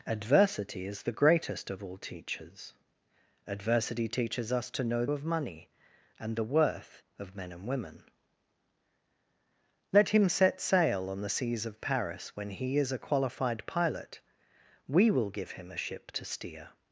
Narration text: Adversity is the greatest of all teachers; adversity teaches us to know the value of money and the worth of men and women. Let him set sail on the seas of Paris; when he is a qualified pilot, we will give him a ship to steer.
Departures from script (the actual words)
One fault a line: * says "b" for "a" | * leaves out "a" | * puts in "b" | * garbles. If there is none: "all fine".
* leaves out "the value"